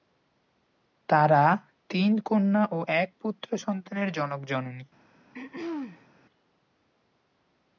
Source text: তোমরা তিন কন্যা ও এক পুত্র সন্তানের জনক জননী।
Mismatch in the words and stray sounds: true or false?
true